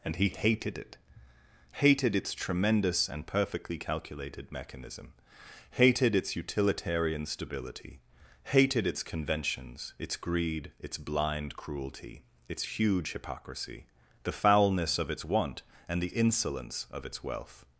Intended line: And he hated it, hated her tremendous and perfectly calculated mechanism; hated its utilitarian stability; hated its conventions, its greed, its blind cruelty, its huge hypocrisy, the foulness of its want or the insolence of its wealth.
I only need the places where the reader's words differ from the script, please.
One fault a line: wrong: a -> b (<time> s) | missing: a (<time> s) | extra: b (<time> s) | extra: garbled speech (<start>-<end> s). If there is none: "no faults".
wrong: her -> its (2.1 s)
wrong: or -> and (15.9 s)